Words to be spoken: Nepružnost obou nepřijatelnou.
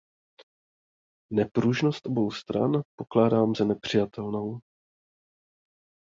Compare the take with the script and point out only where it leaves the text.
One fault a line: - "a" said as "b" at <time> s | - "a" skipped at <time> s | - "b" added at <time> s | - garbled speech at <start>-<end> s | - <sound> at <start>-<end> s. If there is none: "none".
- "stran pokládám za" added at 2.3 s